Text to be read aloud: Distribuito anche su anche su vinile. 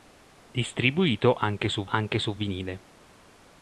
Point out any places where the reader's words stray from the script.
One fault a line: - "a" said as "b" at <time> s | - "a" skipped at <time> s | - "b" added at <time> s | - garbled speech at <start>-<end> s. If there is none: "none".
none